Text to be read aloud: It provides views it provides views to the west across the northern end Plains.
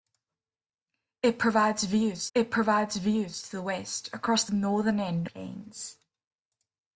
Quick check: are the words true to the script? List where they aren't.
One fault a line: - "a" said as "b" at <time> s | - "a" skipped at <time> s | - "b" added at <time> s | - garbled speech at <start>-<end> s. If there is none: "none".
none